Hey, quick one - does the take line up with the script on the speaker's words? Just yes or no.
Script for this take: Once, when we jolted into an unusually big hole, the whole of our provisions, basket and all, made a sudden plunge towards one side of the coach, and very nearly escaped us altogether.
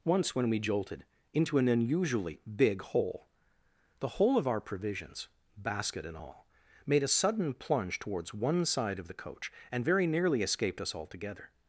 yes